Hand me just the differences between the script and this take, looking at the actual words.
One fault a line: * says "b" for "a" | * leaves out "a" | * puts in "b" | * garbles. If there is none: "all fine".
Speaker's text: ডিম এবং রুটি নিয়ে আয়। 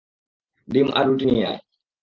* says "আর" for "এবং"